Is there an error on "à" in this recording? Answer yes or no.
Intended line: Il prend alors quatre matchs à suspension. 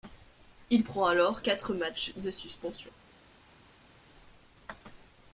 yes